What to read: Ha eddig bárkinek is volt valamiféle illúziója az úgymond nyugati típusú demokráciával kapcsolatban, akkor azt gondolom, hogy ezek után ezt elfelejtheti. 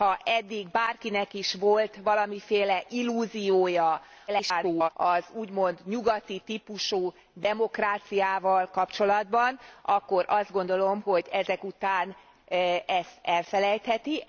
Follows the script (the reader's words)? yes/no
no